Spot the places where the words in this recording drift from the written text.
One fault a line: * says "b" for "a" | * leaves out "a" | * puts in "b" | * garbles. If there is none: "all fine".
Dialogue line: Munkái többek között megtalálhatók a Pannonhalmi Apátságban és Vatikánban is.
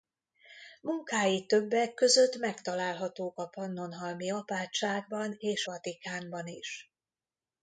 all fine